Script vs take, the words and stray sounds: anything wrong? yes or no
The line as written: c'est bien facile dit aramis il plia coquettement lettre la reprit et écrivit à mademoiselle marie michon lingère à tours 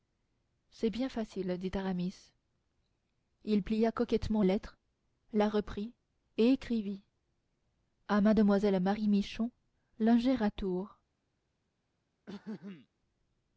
yes